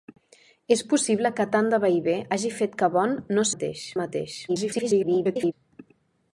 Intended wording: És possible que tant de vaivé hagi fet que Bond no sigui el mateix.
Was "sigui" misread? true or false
true